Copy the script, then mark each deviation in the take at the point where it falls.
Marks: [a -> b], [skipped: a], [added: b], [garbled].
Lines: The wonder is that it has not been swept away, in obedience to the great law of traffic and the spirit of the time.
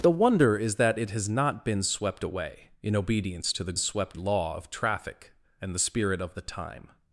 The wonder is that it has not been swept away, in obedience to the [great -> swept] law of traffic and the spirit of the time.